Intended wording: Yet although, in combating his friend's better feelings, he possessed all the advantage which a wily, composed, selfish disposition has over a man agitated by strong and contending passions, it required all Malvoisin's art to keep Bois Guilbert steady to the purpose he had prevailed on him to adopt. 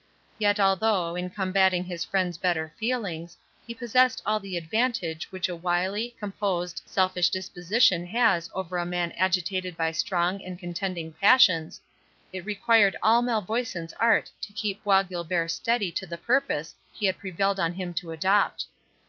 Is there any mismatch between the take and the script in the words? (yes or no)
no